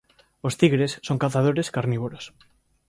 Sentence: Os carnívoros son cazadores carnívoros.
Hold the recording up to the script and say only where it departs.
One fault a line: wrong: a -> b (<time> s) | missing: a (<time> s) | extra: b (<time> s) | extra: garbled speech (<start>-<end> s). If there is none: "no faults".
wrong: carnívoros -> tigres (0.6 s)